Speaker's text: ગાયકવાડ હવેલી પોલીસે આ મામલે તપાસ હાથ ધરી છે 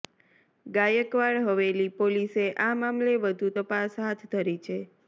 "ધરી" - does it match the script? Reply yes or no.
yes